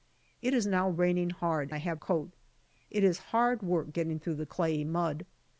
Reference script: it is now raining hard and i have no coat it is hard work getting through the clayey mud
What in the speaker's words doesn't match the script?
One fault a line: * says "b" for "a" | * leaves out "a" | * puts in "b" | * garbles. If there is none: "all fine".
* leaves out "and"
* leaves out "no"